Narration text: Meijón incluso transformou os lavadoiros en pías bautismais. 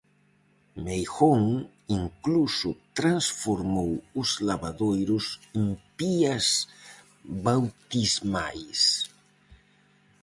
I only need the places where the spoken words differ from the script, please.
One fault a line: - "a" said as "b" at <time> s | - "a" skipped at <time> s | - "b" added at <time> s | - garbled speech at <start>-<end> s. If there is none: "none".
none